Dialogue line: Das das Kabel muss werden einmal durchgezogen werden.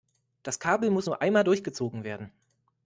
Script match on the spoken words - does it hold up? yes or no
no